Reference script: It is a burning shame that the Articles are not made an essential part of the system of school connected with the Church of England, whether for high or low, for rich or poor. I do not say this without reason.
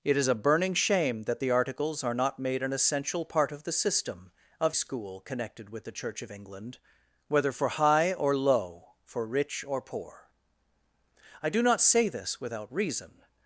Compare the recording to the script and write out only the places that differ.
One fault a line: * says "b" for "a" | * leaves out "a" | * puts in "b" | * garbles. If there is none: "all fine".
all fine